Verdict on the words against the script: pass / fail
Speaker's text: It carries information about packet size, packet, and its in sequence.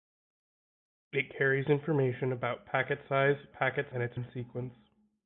pass